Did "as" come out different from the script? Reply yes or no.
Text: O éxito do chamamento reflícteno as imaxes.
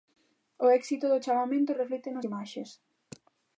yes